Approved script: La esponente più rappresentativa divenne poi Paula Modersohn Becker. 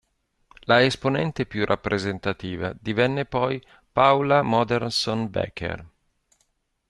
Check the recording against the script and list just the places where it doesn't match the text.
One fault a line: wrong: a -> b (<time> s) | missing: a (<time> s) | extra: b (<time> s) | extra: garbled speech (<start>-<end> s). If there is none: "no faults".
no faults